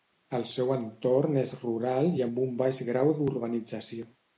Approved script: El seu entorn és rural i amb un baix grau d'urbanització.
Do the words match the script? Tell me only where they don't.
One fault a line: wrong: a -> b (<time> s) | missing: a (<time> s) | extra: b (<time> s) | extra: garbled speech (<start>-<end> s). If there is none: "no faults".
no faults